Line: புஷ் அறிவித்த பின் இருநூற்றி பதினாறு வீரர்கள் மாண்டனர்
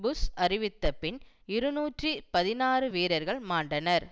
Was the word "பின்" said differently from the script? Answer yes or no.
no